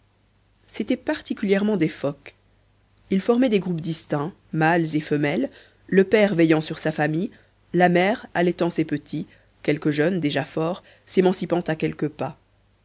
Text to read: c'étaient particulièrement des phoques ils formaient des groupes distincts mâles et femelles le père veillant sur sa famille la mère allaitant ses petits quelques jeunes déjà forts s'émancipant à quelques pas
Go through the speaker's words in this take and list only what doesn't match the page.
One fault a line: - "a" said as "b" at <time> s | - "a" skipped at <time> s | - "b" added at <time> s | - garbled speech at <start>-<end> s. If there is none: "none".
none